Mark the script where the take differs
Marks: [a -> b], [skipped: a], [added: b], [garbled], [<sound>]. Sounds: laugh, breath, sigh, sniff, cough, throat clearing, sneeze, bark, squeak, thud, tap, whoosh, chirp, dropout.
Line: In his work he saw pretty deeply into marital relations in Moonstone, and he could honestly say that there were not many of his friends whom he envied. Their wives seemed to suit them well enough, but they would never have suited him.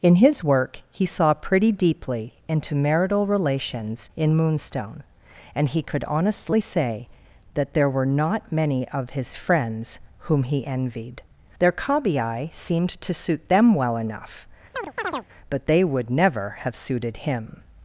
In his work he saw pretty deeply into marital relations in Moonstone, and he could honestly say that there were not many of his friends whom he envied. Their [wives -> cabiai] seemed to suit them well enough, [chirp] but they would never have suited him.